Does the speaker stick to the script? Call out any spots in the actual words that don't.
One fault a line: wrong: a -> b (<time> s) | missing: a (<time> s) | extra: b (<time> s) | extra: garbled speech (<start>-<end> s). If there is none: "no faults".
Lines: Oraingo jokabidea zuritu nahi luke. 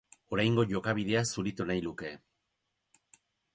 no faults